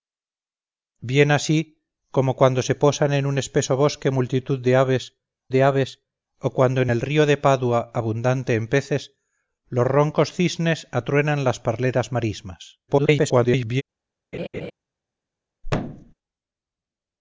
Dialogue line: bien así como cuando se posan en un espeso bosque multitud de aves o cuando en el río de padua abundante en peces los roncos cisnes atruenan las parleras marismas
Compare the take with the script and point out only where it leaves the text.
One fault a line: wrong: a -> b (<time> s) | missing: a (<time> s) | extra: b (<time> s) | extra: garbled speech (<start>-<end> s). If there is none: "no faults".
extra: de aves (5.5 s)
extra: garbled speech (12.9-13.8 s)